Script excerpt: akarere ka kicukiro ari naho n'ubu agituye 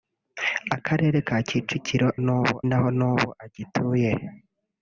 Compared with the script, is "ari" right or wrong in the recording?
wrong